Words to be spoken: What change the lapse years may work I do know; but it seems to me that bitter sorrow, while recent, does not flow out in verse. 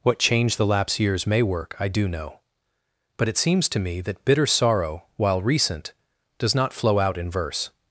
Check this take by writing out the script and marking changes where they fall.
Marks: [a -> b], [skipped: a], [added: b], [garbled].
What change the lapse years may work I do know; but it seems to me that bitter sorrow, while recent, does not flow out in verse.